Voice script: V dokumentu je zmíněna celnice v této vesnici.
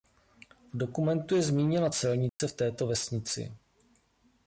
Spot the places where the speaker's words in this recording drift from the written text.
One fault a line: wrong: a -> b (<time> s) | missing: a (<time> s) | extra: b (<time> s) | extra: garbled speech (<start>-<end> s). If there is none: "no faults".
no faults